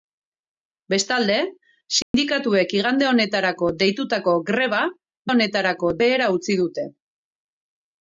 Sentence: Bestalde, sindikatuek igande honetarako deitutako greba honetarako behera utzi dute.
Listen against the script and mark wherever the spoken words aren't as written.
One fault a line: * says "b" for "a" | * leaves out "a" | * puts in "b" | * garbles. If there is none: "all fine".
all fine